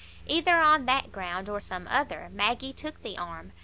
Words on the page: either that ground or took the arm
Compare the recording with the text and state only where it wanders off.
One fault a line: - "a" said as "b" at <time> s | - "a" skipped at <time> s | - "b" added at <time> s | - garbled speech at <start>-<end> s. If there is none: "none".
- "on" added at 0.6 s
- "some other maggie" added at 1.6 s